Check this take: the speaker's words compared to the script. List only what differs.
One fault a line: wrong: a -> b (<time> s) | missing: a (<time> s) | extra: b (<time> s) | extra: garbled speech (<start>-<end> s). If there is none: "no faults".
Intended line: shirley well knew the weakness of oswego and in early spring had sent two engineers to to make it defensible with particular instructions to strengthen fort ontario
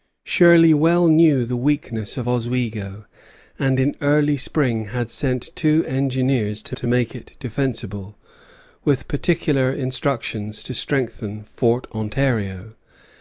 no faults